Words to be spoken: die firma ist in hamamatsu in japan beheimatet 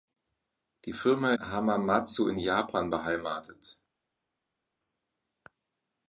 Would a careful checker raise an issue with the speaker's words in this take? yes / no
yes